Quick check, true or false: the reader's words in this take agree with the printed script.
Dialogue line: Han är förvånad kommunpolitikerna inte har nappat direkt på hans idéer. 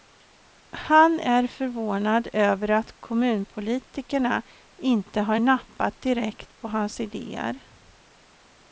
false